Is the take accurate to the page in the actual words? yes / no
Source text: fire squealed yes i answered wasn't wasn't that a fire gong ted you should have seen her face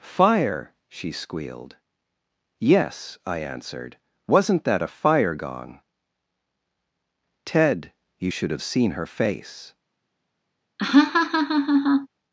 no